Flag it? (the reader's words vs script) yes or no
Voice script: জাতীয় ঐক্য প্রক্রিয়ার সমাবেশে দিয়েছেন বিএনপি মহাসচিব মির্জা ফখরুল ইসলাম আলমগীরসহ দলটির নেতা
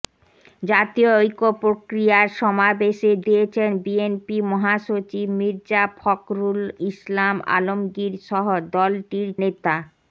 no